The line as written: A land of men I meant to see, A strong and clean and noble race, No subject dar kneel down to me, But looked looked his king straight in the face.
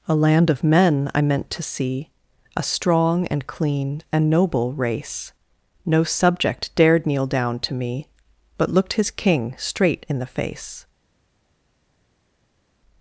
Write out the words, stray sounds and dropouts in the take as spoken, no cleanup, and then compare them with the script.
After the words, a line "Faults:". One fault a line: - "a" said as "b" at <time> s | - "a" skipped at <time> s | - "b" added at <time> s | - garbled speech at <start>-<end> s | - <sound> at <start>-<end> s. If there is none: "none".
A land of men I meant to see, A strong and clean and noble race, No subject dared kneel down to me, But looked his king straight in the face.
Faults:
- "dar" said as "dared" at 6.8 s
- "looked" skipped at 8.9 s